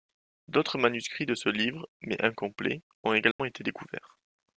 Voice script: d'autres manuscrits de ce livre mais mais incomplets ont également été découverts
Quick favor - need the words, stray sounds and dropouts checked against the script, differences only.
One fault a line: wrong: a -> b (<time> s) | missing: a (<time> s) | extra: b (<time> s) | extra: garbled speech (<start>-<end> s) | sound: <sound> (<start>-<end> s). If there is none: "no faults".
missing: mais (2.2 s)
sound: dropout (3.3-3.4 s)